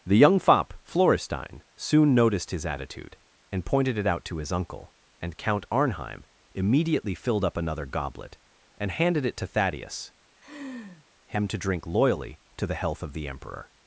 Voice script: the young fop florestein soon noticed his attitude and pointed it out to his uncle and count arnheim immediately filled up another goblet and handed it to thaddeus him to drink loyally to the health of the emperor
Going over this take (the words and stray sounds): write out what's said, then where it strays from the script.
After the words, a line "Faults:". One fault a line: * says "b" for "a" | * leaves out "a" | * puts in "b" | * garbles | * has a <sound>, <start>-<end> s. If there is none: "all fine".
the young fop florestein soon noticed his attitude and pointed it out to his uncle and count arnheim immediately filled up another goblet and handed it to thaddeus him to drink loyally to the health of the emperor
Faults:
* has a laugh, 10.4-11.1 s